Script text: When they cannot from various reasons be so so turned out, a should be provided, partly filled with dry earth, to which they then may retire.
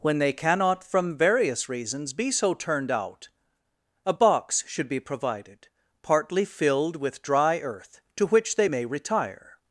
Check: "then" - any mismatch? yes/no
yes